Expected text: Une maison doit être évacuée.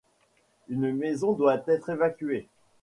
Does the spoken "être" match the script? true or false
true